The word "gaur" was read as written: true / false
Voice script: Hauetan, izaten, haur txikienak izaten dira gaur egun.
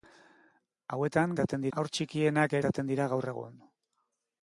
true